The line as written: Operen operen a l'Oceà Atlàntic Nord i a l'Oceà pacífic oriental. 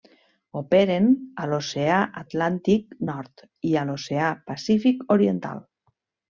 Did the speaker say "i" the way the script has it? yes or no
yes